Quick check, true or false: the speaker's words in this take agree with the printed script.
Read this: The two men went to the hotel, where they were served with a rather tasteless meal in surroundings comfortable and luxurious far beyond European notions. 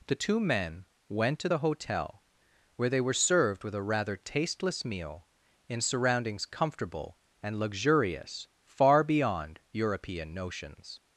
true